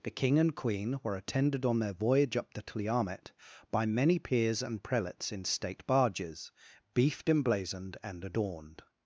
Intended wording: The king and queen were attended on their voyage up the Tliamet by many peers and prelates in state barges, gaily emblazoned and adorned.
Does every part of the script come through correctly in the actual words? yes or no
no